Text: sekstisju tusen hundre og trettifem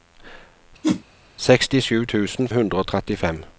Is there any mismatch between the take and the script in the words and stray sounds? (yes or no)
yes